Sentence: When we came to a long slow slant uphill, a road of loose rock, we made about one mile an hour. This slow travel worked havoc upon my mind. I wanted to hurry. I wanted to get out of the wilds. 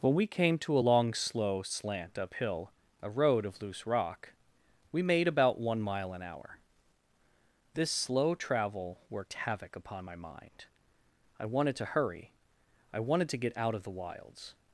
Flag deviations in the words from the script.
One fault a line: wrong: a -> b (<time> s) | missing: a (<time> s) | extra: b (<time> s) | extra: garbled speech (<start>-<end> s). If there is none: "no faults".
no faults